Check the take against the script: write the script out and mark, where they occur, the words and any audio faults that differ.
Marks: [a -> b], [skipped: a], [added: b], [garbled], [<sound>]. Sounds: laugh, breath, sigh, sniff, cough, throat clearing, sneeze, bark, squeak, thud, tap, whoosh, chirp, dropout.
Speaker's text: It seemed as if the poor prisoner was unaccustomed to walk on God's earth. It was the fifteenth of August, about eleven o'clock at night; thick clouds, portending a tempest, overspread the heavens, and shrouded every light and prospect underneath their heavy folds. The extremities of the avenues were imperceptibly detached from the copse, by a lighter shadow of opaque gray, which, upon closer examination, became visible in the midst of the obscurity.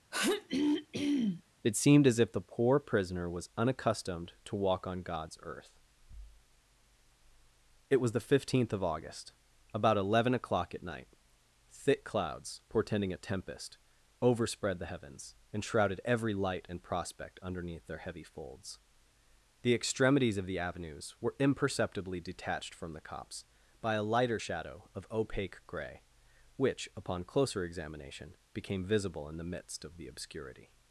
[throat clearing] It seemed as if the poor prisoner was unaccustomed to walk on God's earth. It was the fifteenth of August, about eleven o'clock at night; thick clouds, portending a tempest, overspread the heavens, and shrouded every light and prospect underneath their heavy folds. The extremities of the avenues were imperceptibly detached from the copse, by a lighter shadow of opaque gray, which, upon closer examination, became visible in the midst of the obscurity.